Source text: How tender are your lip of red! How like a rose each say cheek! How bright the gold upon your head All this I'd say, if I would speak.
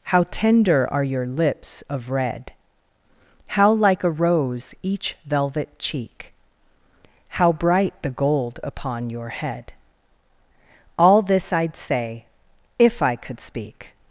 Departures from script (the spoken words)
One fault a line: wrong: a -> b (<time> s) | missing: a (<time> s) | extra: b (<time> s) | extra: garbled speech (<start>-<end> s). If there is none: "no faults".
wrong: lip -> lips (1.2 s)
wrong: say -> velvet (5.2 s)
wrong: would -> could (13.2 s)